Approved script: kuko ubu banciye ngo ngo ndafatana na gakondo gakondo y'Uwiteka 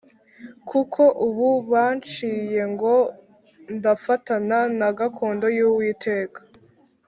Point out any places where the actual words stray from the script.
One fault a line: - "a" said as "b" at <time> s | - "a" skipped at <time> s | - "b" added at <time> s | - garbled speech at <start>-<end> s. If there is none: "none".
- "ngo" skipped at 3.0 s
- "gakondo" skipped at 5.5 s